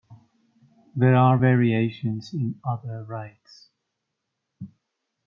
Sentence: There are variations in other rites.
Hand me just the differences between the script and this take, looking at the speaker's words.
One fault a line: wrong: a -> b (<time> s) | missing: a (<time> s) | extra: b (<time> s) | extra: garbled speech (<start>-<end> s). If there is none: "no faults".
no faults